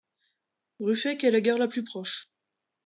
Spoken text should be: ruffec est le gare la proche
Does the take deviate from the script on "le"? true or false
true